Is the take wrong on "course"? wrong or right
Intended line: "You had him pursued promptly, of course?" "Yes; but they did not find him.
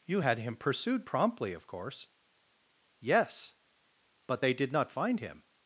right